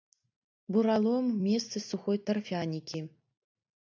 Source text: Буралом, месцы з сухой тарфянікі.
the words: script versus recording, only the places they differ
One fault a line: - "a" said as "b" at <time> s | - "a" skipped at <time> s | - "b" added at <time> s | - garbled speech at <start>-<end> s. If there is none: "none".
none